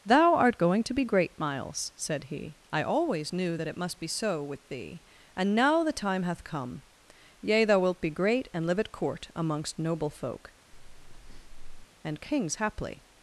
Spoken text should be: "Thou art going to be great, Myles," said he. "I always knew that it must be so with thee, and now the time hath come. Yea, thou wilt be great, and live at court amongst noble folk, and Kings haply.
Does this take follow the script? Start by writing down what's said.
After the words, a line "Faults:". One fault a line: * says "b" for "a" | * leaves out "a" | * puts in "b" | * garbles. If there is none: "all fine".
"Thou art going to be great, Myles," said he. "I always knew that it must be so with thee, and now the time hath come. Yea, thou wilt be great, and live at court amongst noble folk, and Kings haply.
Faults:
all fine